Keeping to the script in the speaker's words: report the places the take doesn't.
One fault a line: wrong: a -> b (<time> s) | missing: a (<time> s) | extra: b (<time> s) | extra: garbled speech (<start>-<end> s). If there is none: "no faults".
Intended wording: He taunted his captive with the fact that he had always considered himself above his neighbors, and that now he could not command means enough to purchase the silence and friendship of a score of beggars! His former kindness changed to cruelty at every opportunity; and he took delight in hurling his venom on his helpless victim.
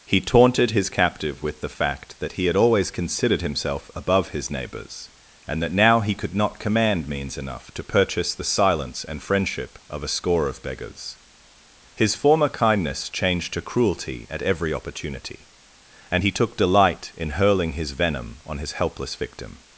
no faults